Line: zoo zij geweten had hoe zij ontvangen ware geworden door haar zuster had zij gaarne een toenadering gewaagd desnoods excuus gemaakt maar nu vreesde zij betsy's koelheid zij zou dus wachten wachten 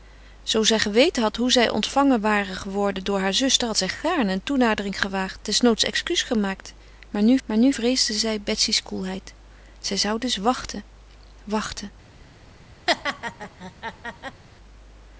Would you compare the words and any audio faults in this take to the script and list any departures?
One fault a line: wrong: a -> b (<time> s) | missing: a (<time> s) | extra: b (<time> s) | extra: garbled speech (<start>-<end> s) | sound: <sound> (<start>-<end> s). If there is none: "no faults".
extra: maar nu (7.4 s)
sound: laugh (12.9-14.4 s)